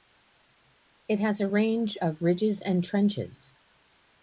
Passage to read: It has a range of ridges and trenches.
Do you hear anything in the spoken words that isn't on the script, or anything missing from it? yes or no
no